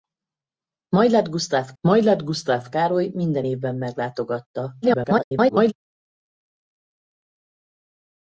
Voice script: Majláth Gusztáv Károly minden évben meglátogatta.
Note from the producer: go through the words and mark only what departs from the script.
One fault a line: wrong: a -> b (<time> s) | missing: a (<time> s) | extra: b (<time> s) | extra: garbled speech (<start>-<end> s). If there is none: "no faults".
extra: majláth Gusztáv (1.8 s)
extra: garbled speech (4.8-5.7 s)